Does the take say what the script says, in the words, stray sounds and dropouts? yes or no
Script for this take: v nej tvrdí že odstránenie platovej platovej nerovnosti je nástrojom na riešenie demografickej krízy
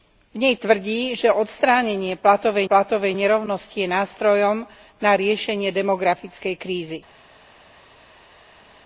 yes